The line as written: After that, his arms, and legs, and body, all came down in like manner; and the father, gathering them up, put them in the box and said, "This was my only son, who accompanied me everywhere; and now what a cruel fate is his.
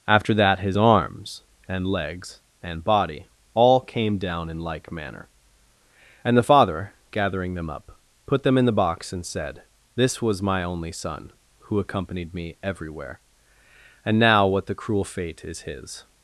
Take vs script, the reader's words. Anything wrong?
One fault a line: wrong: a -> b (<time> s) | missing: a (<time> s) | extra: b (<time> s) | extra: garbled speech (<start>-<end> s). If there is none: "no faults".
wrong: a -> the (14.7 s)